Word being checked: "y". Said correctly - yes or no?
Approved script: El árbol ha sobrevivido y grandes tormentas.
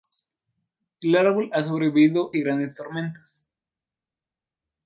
yes